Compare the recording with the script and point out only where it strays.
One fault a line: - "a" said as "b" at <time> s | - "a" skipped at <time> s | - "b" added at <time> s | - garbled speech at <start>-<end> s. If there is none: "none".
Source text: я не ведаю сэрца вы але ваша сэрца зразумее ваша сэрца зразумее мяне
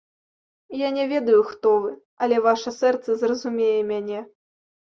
- "сэрца" said as "хто" at 1.5 s
- "ваша сэрца зразумее" skipped at 3.8 s